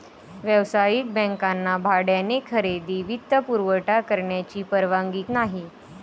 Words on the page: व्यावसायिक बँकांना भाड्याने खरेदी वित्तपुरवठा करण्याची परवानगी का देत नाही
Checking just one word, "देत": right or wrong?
wrong